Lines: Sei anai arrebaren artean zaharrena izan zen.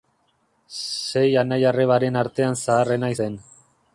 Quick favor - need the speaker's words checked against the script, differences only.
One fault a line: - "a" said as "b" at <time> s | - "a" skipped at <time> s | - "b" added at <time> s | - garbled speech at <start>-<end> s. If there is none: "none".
- "izan" skipped at 3.1 s